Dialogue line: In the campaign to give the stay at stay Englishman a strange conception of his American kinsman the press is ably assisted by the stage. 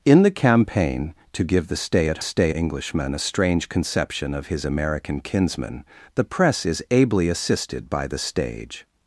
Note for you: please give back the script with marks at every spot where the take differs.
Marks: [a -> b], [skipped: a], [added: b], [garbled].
In the campaign to give the stay at stay Englishman a strange conception of his American kinsman the press is ably assisted by the stage.